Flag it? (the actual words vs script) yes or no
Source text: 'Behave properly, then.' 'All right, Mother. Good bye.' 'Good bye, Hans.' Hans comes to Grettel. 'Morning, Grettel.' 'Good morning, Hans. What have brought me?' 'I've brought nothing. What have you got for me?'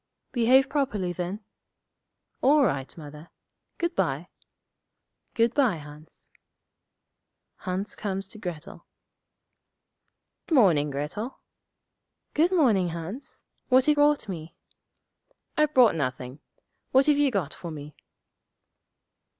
no